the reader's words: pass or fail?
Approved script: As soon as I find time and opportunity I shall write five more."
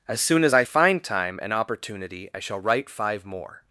pass